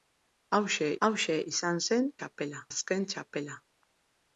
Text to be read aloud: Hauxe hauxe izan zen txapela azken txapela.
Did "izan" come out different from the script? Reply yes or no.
no